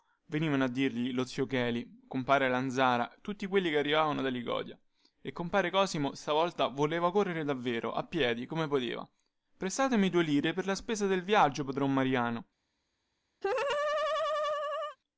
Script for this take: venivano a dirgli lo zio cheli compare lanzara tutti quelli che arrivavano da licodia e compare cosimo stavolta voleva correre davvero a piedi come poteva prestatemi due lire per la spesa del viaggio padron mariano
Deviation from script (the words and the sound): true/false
true